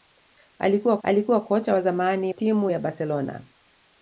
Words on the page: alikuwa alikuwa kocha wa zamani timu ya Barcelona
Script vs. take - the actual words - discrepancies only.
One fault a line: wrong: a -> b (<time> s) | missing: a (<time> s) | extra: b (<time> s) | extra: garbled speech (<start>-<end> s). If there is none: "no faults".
no faults